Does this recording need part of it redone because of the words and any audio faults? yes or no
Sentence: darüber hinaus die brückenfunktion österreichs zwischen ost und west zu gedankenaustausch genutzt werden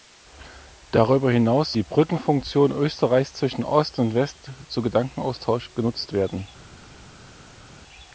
no